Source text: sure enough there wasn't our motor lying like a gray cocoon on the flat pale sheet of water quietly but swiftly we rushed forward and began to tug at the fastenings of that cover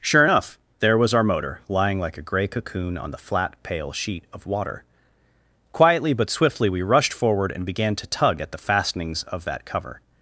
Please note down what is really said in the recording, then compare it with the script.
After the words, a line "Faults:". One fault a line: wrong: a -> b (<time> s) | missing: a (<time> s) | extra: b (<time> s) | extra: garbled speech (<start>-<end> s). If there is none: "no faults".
sure enough there was our motor lying like a gray cocoon on the flat pale sheet of water quietly but swiftly we rushed forward and began to tug at the fastenings of that cover
Faults:
wrong: wasn't -> was (1.0 s)